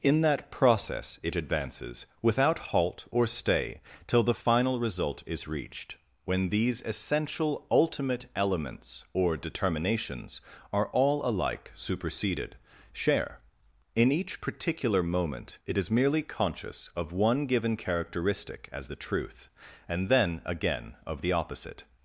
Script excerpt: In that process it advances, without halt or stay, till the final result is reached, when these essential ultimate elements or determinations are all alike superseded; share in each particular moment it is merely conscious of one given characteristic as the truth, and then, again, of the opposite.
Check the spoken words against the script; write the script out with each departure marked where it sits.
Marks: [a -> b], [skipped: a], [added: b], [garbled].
In that process it advances, without halt or stay, till the final result is reached, when these essential ultimate elements or determinations are all alike superseded; share in each particular moment it is merely conscious of one given characteristic as the truth, and then, again, of the opposite.